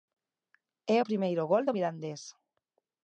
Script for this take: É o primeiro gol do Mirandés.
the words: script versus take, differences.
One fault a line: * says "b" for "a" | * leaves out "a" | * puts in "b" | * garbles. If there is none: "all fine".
all fine